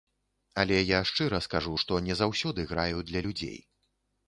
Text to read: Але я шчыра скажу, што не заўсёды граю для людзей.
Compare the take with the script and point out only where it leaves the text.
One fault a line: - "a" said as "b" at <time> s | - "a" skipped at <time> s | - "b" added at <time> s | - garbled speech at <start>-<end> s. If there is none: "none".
none